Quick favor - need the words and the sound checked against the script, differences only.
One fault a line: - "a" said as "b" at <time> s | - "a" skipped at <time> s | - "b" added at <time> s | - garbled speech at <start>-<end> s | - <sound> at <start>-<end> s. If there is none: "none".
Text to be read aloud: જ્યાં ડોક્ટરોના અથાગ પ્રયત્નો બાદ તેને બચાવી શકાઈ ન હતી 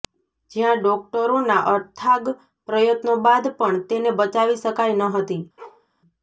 - "પણ" added at 3.6 s
- bark at 5.6-5.9 s